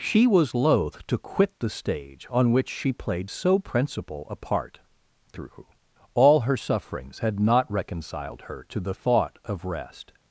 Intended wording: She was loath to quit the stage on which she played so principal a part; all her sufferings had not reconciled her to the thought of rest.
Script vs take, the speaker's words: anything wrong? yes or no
yes